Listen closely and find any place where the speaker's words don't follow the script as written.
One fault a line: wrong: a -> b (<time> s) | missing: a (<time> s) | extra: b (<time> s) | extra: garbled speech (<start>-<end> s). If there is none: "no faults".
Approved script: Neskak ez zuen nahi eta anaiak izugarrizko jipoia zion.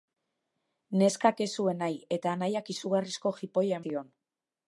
no faults